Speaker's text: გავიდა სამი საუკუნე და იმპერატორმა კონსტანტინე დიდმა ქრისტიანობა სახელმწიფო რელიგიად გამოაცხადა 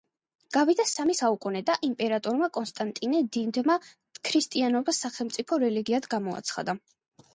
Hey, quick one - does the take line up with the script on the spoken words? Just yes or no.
yes